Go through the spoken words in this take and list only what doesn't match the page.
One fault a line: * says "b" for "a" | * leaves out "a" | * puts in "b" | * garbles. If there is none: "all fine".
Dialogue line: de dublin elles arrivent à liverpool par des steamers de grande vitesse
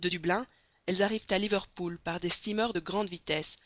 all fine